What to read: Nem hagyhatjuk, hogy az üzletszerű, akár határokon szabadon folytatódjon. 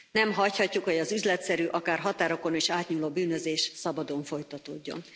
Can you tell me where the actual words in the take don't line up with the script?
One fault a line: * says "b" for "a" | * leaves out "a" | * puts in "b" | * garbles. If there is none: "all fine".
* puts in "is átnyúló bűnözés"